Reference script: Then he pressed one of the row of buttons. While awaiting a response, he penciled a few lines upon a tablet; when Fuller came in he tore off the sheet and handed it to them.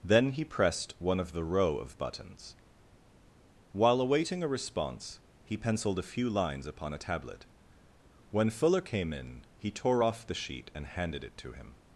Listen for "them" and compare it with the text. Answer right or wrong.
wrong